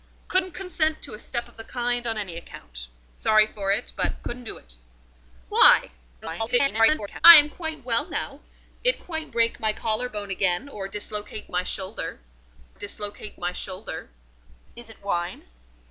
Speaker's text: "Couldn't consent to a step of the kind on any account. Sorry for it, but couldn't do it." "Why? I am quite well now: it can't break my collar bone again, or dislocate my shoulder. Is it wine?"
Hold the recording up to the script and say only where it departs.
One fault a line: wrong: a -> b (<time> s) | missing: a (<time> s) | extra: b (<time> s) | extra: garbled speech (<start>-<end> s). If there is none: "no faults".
extra: garbled speech (6.2-7.2 s)
wrong: can't -> quite (9.0 s)
extra: dislocate my shoulder (12.7 s)